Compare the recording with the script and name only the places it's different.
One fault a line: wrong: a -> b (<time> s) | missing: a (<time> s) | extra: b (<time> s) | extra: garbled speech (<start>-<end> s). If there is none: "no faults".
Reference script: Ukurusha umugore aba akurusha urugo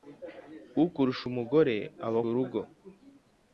missing: akurusha (2.2 s)